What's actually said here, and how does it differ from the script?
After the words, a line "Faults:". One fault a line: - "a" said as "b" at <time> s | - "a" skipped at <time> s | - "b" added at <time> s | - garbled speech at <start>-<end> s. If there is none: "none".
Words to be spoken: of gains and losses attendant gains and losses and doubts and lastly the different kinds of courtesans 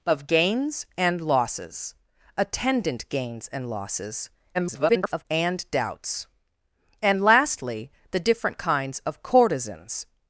of gains and losses attendant gains and losses [garbled] and doubts and lastly the different kinds of courtesans
Faults:
- garbled speech at 4.5-5.3 s